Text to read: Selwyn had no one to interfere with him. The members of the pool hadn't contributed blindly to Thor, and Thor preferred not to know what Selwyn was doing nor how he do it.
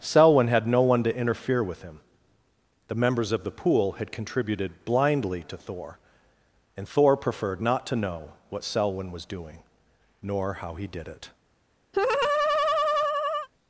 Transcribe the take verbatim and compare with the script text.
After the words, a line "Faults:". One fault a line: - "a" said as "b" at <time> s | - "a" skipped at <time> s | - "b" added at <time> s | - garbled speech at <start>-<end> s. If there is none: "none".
Selwyn had no one to interfere with him. The members of the pool had contributed blindly to Thor, and Thor preferred not to know what Selwyn was doing nor how he did it.
Faults:
- "hadn't" said as "had" at 3.9 s
- "do" said as "did" at 10.9 s